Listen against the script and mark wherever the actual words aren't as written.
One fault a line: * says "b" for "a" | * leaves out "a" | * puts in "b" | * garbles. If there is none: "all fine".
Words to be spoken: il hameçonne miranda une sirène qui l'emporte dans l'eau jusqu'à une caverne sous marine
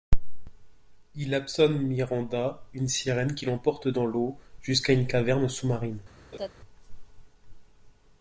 all fine